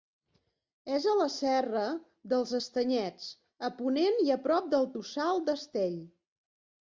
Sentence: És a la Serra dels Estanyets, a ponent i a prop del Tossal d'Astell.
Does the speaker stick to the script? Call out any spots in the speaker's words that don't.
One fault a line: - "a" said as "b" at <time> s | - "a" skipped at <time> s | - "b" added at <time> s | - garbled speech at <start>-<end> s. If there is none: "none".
none